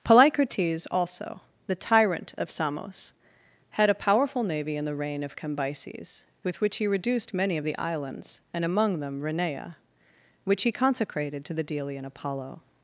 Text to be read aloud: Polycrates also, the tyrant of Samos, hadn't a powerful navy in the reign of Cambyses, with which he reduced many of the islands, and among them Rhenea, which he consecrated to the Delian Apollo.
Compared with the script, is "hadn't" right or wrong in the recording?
wrong